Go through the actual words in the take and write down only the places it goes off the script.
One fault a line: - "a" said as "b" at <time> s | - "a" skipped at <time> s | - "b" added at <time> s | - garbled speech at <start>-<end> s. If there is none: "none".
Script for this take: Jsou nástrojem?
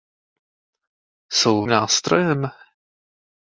none